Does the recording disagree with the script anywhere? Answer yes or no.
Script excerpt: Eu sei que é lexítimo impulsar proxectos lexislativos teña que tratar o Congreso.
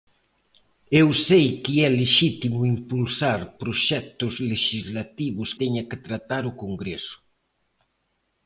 no